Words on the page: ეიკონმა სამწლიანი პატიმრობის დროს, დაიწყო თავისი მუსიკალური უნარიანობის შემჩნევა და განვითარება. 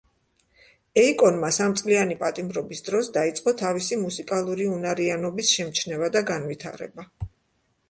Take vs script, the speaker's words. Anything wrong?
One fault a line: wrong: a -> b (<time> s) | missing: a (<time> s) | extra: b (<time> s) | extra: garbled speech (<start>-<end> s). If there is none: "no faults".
no faults